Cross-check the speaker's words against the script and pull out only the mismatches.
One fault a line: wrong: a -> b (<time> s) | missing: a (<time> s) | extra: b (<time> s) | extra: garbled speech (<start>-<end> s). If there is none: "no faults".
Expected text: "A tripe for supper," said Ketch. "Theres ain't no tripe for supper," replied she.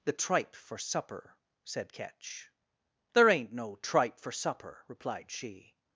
wrong: A -> The (0.0 s)
wrong: Theres -> There (3.1 s)